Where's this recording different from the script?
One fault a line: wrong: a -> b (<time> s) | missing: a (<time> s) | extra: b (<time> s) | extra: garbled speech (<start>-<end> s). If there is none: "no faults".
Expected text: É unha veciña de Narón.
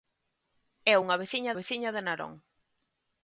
extra: veciña (1.6 s)